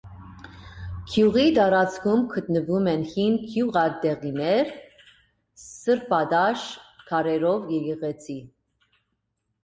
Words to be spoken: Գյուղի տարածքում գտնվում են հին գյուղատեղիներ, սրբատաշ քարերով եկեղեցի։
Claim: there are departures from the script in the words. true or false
false